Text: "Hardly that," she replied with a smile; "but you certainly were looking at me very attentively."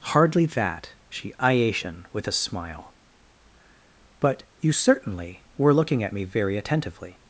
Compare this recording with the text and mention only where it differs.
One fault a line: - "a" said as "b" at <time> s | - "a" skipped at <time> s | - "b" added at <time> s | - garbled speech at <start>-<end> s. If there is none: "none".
- "replied" said as "iation" at 1.4 s